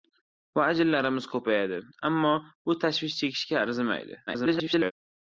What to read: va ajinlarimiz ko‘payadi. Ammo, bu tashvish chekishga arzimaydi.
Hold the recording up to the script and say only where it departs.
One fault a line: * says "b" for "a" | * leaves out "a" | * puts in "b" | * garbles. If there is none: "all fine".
* garbles